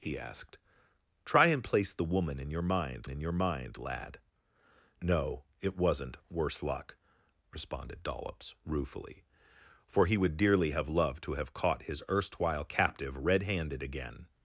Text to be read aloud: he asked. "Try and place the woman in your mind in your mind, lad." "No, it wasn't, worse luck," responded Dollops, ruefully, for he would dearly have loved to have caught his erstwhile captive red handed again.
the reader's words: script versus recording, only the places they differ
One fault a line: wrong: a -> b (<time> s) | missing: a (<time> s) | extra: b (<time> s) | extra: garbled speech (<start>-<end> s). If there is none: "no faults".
no faults